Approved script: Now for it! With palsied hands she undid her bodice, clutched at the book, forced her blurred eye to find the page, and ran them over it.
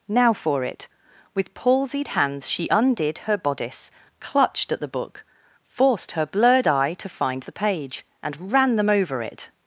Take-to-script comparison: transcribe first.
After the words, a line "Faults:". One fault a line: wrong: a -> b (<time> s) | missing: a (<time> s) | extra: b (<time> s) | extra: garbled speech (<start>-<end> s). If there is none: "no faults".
Now for it! With palsied hands she undid her bodice, clutched at the book, forced her blurred eye to find the page, and ran them over it.
Faults:
no faults